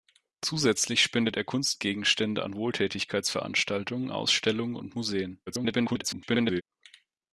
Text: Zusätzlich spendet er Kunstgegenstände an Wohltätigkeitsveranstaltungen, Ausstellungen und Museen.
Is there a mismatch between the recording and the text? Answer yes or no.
yes